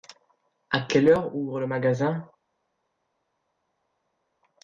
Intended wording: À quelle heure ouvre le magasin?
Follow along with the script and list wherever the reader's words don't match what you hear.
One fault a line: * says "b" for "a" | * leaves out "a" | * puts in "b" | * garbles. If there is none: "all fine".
all fine